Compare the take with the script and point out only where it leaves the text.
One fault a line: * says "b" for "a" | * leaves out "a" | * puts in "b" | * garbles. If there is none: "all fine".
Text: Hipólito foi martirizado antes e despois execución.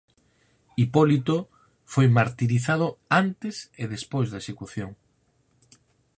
* puts in "da"